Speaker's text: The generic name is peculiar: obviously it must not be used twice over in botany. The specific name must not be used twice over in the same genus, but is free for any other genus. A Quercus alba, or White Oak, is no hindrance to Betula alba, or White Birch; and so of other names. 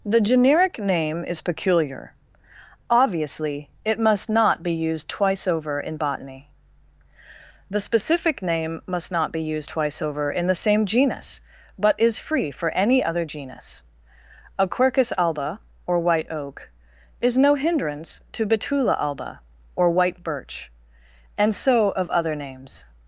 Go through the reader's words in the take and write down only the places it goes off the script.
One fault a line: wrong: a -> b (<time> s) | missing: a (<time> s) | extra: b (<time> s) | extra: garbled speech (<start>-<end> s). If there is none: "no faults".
no faults